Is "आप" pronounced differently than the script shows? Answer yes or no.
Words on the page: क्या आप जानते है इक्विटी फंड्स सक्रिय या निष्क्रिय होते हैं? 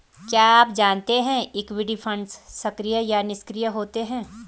no